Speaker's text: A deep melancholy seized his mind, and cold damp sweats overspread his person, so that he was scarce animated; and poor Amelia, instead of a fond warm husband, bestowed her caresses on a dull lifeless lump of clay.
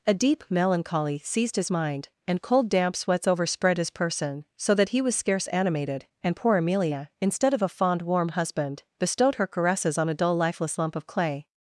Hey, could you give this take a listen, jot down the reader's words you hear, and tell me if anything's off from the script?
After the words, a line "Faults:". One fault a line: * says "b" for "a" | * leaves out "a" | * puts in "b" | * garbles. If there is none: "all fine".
A deep melancholy seized his mind, and cold damp sweats overspread his person, so that he was scarce animated; and poor Amelia, instead of a fond warm husband, bestowed her caresses on a dull lifeless lump of clay.
Faults:
all fine